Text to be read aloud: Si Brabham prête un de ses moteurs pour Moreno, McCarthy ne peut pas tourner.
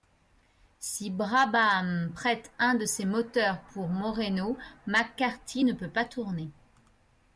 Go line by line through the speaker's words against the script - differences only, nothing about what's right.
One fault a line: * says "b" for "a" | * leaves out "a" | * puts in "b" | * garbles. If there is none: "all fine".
all fine